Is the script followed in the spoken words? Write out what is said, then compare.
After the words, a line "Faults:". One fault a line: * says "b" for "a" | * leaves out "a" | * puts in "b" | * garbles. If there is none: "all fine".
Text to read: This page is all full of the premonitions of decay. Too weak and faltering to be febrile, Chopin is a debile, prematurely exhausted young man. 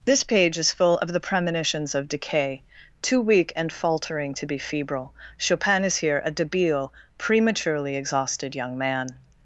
This page is full of the premonitions of decay. Too weak and faltering to be febrile, Chopin is here a debile, prematurely exhausted young man.
Faults:
* leaves out "all"
* puts in "here"